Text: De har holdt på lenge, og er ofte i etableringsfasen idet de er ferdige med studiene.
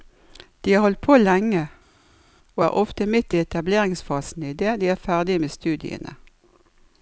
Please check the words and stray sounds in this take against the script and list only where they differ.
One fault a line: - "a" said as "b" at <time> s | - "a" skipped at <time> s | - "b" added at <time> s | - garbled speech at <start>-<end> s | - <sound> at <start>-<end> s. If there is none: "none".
- "midt" added at 3.1 s